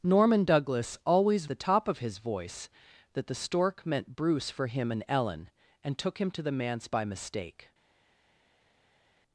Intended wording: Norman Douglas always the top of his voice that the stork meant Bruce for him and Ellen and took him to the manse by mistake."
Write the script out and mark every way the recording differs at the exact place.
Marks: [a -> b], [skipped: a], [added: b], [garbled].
Norman Douglas always the top of his voice that the stork meant Bruce for him and Ellen and took him to the manse by mistake."